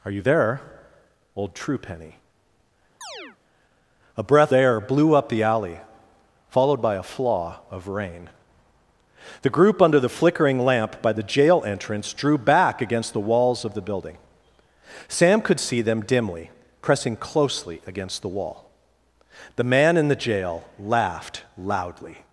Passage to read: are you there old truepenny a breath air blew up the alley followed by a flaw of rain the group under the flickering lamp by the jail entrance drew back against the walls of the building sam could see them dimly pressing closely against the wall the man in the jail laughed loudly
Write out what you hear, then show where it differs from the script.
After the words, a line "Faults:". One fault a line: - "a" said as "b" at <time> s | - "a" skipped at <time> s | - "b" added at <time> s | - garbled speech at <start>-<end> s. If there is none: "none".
are you there old truepenny a breath air blew up the alley followed by a flaw of rain the group under the flickering lamp by the jail entrance drew back against the walls of the building sam could see them dimly pressing closely against the wall the man in the jail laughed loudly
Faults:
none